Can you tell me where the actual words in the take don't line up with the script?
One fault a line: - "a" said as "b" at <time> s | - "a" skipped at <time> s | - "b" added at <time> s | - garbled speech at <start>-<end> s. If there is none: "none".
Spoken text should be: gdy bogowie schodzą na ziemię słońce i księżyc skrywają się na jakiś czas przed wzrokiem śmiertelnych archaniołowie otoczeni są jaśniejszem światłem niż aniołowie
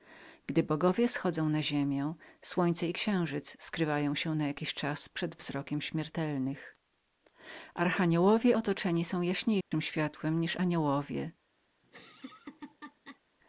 none